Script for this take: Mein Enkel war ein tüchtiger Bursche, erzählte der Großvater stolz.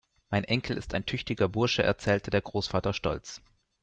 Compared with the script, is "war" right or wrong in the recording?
wrong